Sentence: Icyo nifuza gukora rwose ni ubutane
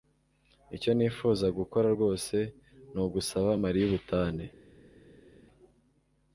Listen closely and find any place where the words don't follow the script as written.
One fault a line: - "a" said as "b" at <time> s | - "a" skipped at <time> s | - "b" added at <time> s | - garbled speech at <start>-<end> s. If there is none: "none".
- "ugusaba Mariya" added at 3.0 s